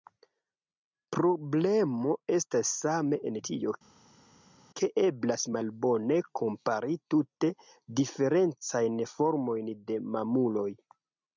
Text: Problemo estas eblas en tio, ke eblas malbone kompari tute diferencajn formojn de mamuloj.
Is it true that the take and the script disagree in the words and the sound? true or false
true